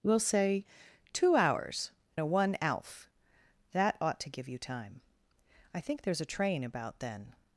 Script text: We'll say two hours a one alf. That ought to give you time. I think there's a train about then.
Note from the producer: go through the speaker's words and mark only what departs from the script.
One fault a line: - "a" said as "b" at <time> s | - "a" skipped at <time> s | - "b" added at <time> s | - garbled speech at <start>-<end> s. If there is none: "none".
none